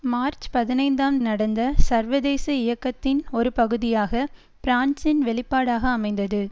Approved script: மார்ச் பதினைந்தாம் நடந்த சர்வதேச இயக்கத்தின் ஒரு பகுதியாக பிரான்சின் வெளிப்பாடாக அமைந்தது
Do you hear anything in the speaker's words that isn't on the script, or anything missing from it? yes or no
no